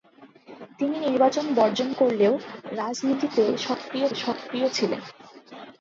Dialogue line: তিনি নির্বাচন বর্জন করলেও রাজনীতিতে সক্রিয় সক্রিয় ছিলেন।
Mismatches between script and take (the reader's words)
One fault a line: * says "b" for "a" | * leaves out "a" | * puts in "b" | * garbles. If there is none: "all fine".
all fine